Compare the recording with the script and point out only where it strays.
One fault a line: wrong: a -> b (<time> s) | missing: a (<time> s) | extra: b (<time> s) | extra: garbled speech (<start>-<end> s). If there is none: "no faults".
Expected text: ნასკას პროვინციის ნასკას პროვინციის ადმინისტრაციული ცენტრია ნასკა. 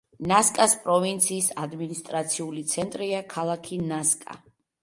missing: ნასკას პროვინციის (1.5 s)
extra: ქალაქი (3.4 s)